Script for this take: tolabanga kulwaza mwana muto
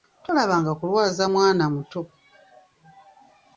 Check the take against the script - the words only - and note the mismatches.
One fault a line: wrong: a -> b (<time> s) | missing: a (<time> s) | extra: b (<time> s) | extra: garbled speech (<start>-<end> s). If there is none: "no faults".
no faults